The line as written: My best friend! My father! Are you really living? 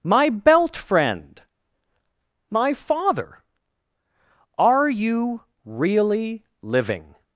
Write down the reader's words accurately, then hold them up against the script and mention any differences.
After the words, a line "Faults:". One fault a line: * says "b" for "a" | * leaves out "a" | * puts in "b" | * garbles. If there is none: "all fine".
My belt friend! My father! Are you really living?
Faults:
* says "belt" for "best"